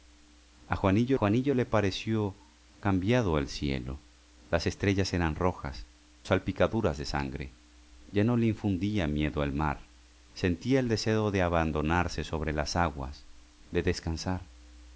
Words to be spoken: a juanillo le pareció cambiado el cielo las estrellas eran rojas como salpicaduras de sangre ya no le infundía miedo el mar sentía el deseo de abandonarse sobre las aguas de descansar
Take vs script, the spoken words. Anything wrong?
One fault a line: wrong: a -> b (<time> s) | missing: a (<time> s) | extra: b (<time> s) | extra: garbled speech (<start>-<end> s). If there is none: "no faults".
extra: juanillo (1.1 s)
missing: como (5.9 s)